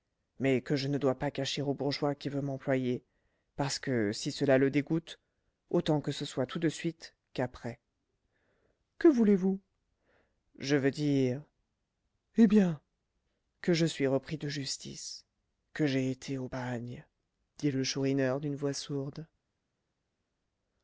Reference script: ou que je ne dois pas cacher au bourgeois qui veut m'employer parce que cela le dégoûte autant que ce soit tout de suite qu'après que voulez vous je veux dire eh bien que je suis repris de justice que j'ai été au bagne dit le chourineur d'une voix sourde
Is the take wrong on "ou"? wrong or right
wrong